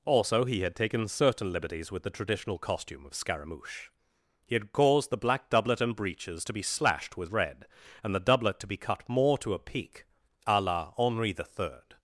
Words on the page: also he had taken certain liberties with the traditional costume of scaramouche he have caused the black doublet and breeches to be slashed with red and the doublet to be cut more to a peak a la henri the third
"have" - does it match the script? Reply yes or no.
no